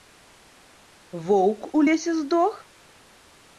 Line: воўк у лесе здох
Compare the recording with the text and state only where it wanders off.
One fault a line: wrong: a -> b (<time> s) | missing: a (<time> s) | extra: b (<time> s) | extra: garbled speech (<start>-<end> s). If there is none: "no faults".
no faults